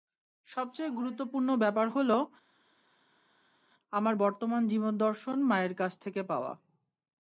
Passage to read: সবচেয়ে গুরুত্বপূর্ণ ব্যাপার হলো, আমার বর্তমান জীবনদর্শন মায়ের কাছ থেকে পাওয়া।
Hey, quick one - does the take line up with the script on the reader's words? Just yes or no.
yes